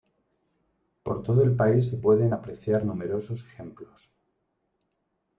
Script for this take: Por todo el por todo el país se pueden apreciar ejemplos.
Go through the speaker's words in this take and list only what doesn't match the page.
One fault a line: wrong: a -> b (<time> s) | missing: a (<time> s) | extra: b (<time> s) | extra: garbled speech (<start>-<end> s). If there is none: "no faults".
missing: por todo el (1.6 s)
extra: numerosos (2.8 s)